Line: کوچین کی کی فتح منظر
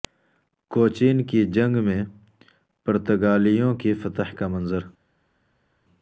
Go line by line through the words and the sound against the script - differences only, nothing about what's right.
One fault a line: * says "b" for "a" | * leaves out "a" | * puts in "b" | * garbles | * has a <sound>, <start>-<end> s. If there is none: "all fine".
* puts in "جنگ میں پرتگالیوں"
* puts in "کا"